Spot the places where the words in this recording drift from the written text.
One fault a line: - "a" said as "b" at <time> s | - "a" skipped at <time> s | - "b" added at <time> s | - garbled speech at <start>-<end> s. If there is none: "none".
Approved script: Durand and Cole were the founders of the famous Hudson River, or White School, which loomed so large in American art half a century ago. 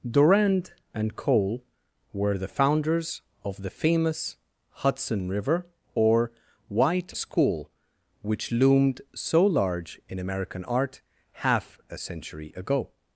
none